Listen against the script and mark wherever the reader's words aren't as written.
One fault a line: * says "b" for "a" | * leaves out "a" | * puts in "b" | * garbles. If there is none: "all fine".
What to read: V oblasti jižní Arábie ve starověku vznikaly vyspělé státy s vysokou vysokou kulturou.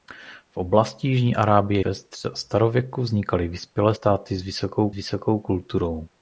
all fine